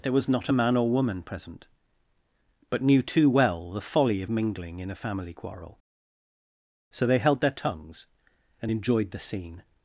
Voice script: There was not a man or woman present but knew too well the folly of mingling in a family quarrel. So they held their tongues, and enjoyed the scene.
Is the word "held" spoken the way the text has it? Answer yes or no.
yes